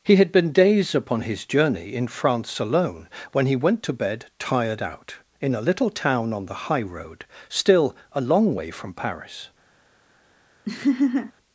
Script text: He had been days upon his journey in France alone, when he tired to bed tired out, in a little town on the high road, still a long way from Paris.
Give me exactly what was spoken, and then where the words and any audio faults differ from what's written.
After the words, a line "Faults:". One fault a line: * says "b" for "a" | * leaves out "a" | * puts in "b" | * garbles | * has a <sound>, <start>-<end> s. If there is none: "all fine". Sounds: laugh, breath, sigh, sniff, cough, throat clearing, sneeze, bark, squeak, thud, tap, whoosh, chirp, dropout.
He had been days upon his journey in France alone, when he went to bed tired out, in a little town on the high road, still a long way from Paris.
Faults:
* says "went" for "tired"
* has a laugh, 10.7-11.3 s